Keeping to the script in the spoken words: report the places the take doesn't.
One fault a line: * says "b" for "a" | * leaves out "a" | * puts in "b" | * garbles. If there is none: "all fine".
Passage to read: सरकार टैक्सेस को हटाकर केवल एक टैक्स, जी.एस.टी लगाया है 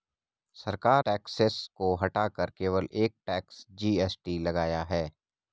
all fine